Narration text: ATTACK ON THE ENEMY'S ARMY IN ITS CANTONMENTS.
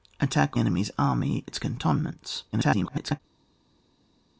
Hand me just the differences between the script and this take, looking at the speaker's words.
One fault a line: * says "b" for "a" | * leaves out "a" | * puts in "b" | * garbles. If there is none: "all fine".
* leaves out "ON THE"
* leaves out "IN"
* garbles